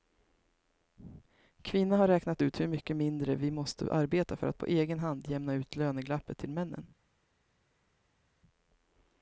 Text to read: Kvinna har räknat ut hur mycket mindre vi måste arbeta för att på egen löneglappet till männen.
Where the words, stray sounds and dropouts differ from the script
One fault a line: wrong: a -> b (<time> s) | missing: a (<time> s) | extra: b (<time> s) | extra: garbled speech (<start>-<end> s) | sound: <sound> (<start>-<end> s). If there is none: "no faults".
extra: hand jämna ut (5.0 s)